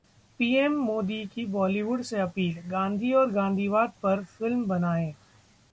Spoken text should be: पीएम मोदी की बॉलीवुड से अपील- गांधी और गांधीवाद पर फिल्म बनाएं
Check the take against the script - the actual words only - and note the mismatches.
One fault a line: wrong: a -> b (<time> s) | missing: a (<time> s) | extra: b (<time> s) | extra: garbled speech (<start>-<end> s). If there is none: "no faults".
no faults